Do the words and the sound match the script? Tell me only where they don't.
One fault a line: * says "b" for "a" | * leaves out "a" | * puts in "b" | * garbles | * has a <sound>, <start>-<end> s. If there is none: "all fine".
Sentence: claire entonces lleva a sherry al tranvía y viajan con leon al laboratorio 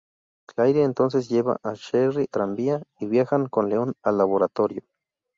* leaves out "al"